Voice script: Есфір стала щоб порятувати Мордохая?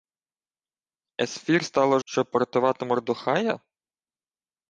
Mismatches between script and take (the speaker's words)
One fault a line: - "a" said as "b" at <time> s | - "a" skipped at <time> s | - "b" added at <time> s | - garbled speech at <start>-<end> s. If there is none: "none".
none